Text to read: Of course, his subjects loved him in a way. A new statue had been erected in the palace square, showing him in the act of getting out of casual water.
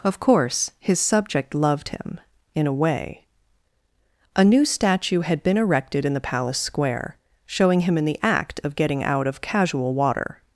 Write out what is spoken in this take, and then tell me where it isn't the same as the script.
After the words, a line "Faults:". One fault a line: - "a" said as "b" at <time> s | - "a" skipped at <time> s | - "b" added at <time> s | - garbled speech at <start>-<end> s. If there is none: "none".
Of course, his subject loved him in a way. A new statue had been erected in the palace square, showing him in the act of getting out of casual water.
Faults:
- "subjects" said as "subject" at 1.0 s